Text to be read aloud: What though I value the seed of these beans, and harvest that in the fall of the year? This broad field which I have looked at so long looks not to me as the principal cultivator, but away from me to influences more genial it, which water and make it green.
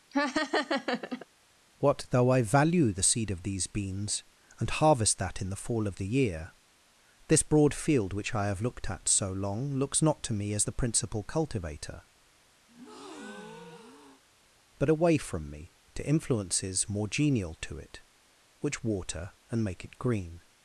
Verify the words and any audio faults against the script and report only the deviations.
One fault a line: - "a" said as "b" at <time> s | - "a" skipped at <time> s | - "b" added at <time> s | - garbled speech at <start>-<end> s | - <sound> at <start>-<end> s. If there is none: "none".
- laugh at 0.1-1.3 s
- breath at 12.7-14.2 s
- "to" added at 17.6 s